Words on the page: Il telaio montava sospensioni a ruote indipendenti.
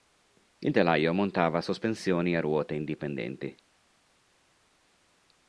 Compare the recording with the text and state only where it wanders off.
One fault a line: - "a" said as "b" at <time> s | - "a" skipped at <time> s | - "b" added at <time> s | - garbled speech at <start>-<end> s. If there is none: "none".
none